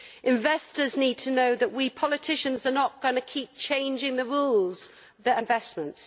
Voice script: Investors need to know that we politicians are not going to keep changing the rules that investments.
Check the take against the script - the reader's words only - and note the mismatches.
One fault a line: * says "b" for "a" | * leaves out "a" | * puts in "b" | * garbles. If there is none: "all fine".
all fine